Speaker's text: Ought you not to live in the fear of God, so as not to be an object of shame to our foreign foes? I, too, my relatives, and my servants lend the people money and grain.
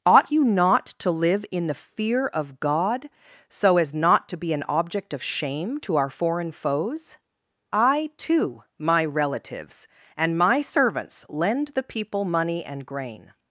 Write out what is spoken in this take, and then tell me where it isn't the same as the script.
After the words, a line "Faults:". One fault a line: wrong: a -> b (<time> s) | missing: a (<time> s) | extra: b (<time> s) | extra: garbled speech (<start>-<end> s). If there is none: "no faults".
Ought you not to live in the fear of God, so as not to be an object of shame to our foreign foes? I, too, my relatives, and my servants lend the people money and grain.
Faults:
no faults